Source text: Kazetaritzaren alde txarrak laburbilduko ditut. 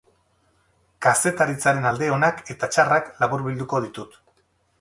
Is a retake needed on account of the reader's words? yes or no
yes